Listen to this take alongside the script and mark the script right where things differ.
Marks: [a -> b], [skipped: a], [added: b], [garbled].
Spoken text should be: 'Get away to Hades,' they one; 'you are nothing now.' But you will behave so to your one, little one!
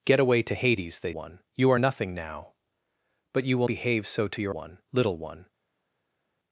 'Get away to Hades,' they one; 'you are nothing now.' But you will behave so to your one, little one!